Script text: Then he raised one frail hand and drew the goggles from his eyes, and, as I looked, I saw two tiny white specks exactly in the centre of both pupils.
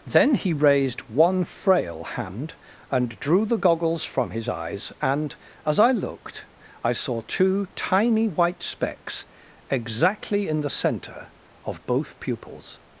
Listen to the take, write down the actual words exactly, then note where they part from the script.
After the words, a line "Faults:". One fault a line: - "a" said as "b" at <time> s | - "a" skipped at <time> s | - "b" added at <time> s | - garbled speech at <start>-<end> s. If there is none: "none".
Then he raised one frail hand and drew the goggles from his eyes, and, as I looked, I saw two tiny white specks exactly in the centre of both pupils.
Faults:
none